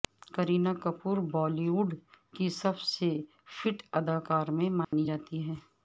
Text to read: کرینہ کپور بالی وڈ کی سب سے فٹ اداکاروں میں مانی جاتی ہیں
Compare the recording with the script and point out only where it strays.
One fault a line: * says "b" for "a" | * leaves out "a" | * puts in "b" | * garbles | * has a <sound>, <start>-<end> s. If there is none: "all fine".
* has a dropout, 4.8-4.9 s